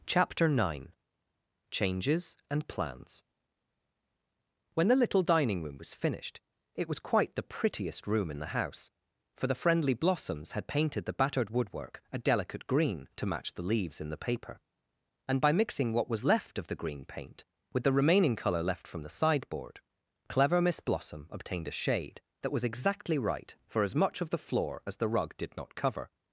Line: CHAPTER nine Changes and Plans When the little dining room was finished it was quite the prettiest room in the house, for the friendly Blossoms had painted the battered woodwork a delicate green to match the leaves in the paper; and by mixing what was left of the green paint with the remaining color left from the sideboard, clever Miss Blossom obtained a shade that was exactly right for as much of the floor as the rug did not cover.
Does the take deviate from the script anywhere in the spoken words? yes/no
no